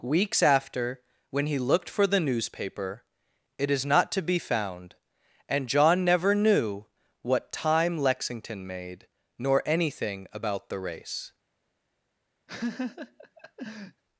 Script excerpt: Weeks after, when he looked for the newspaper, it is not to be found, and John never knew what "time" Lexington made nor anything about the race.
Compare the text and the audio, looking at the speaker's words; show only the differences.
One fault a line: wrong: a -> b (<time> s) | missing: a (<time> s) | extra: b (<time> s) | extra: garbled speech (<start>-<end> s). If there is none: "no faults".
no faults